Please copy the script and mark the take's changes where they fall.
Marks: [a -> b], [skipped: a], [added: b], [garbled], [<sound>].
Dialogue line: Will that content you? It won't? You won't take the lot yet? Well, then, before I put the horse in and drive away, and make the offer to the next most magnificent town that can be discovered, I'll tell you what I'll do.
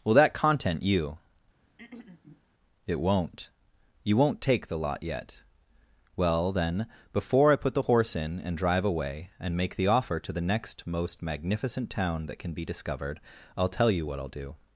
Will that content you? [throat clearing] It won't? You won't take the lot yet? Well, then, before I put the horse in and drive away, and make the offer to the next most magnificent town that can be discovered, I'll tell you what I'll do.